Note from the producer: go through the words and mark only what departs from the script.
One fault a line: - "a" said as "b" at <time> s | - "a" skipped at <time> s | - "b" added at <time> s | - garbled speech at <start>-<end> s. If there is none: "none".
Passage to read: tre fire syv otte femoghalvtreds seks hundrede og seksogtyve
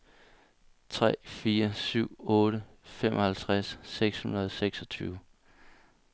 none